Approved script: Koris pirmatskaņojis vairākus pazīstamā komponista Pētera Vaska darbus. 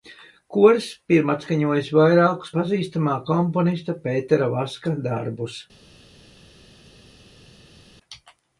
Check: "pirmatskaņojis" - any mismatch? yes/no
no